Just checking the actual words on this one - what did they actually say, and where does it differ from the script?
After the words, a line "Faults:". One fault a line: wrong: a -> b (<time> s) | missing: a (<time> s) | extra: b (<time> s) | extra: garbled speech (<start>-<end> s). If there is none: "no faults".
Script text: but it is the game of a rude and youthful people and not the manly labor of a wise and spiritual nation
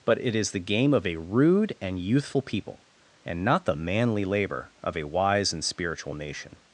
but it is the game of a rude and youthful people and not the manly labor of a wise and spiritual nation
Faults:
no faults